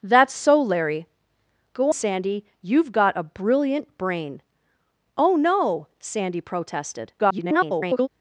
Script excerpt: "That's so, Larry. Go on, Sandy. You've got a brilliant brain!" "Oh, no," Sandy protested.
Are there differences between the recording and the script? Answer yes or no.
yes